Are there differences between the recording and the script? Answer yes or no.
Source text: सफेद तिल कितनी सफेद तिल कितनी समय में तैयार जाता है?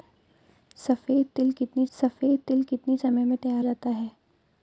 no